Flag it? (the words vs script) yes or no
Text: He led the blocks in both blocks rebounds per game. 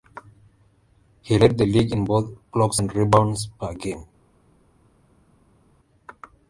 yes